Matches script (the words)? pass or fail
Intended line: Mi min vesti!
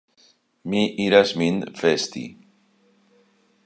fail